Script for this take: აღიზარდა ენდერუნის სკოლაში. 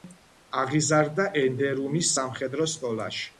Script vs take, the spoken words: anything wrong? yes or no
yes